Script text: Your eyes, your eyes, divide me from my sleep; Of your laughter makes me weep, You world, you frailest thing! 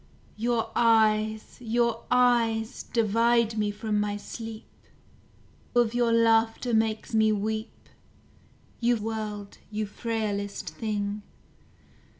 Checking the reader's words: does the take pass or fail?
pass